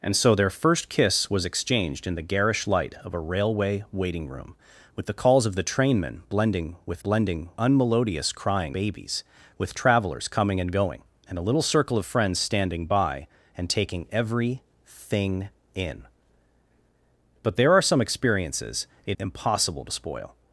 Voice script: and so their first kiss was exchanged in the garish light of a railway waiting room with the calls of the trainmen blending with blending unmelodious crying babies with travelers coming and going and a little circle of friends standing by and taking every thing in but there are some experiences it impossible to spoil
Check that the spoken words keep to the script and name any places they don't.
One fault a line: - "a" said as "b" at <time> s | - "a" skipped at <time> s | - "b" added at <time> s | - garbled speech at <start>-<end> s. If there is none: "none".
none